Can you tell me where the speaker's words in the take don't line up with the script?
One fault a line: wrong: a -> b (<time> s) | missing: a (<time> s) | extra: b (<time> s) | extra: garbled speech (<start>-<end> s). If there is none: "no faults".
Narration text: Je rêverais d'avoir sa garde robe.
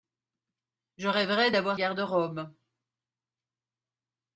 missing: sa (1.8 s)